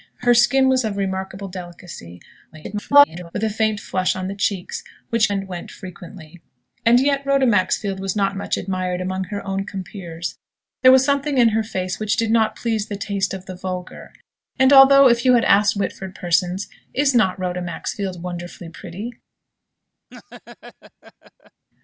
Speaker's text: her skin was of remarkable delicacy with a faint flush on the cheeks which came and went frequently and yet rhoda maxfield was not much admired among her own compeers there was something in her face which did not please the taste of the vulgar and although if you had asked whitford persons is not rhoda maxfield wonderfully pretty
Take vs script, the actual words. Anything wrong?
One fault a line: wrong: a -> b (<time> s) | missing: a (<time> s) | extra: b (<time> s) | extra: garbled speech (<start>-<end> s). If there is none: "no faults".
extra: garbled speech (2.5-3.3 s)
missing: came (5.3 s)